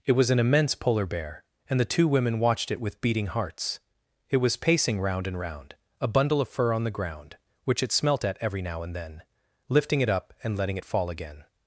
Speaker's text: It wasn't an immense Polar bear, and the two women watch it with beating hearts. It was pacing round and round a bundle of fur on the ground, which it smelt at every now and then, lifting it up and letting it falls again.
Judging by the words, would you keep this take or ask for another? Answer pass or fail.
fail